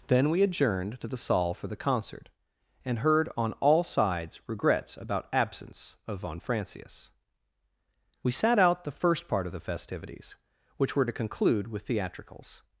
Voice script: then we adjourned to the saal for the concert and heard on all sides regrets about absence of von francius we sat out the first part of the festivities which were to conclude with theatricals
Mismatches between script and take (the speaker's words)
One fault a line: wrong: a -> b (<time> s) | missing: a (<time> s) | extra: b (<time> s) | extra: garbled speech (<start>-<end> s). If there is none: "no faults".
no faults